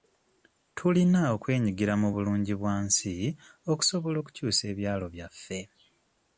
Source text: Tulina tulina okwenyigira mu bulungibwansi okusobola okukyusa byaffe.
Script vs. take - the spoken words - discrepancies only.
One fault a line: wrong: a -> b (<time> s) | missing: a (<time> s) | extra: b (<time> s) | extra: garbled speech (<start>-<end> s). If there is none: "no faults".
missing: tulina (1.2 s)
extra: ebyalo (4.7 s)